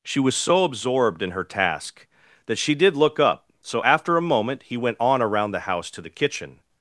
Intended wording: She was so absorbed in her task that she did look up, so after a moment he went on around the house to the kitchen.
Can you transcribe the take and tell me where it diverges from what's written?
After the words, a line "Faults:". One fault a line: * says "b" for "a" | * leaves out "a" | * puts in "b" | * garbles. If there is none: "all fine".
She was so absorbed in her task that she did look up, so after a moment he went on around the house to the kitchen.
Faults:
all fine